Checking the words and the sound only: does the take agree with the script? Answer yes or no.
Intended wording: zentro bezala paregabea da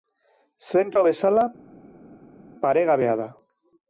yes